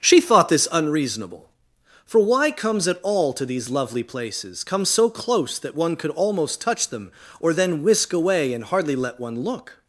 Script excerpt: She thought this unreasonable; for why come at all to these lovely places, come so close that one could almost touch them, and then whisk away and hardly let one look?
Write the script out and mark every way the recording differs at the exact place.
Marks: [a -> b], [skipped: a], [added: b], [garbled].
She thought this unreasonable; for why [come -> comes] at all to these lovely places, come so close that one could almost touch them, [and -> or] then whisk away and hardly let one look?